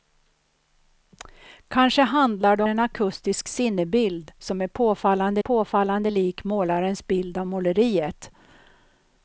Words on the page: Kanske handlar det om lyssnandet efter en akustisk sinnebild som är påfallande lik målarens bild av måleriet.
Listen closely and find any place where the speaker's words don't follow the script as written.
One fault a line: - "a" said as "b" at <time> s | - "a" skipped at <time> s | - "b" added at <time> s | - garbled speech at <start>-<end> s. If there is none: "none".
- "om lyssnandet efter" skipped at 2.6 s
- "påfallande" added at 5.4 s